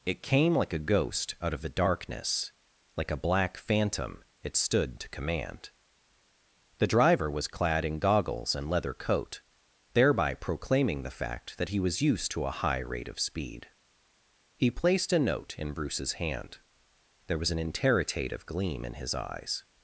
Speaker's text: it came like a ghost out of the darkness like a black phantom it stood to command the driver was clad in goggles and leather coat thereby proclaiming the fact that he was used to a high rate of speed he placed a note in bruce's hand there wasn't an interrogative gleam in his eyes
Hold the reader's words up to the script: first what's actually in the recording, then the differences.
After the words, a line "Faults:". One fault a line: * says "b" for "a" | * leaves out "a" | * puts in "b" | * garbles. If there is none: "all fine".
it came like a ghost out of the darkness like a black phantom it stood to command the driver was clad in goggles and leather coat thereby proclaiming the fact that he was used to a high rate of speed he placed a note in bruce's hand there was an interrogative gleam in his eyes
Faults:
* says "was" for "wasn't"